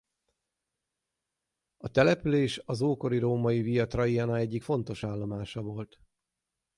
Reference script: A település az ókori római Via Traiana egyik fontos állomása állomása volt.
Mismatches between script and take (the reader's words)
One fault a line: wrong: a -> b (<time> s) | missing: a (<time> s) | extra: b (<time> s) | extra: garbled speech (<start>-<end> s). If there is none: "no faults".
missing: állomása (5.6 s)